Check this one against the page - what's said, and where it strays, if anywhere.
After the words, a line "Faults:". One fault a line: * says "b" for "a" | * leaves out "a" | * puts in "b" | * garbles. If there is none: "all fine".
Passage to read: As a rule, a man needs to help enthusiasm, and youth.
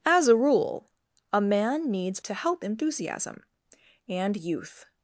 As a rule, a man needs to help enthusiasm, and youth.
Faults:
all fine